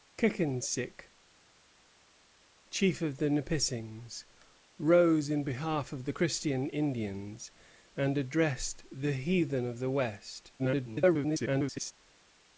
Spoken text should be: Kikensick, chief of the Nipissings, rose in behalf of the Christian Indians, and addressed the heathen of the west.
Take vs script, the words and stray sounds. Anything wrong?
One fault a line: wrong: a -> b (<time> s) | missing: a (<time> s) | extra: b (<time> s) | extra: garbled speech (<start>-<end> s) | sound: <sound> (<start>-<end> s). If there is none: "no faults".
extra: garbled speech (10.6-11.9 s)